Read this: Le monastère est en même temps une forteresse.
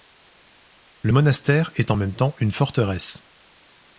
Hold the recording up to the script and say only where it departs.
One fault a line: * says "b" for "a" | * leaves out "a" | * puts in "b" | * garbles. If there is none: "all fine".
all fine